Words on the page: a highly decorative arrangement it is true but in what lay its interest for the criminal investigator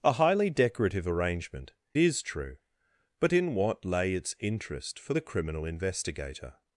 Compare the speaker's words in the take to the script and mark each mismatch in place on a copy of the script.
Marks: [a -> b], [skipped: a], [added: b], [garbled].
a highly decorative arrangement [skipped: it] is true but in what lay its interest for the criminal investigator